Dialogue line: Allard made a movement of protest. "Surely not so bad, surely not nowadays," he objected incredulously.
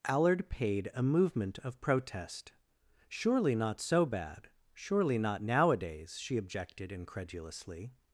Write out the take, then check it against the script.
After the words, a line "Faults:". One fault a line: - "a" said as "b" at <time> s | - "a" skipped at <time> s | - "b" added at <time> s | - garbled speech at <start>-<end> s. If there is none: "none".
Allard paid a movement of protest. "Surely not so bad, surely not nowadays," she objected incredulously.
Faults:
- "made" said as "paid" at 0.5 s
- "he" said as "she" at 6.2 s